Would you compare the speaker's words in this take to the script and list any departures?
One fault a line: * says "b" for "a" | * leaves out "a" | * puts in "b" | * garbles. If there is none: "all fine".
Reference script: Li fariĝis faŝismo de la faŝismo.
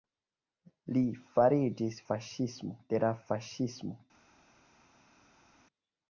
all fine